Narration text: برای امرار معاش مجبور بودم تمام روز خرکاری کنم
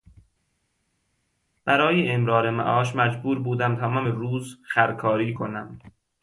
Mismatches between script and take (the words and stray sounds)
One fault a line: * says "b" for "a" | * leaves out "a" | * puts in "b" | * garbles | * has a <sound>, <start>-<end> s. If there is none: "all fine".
all fine